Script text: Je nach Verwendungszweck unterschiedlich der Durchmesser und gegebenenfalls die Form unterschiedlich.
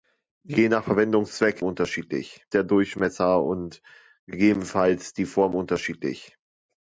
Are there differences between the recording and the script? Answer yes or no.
no